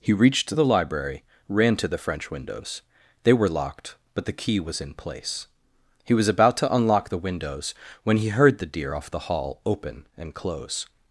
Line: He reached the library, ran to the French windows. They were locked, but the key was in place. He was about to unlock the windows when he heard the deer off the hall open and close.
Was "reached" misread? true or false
false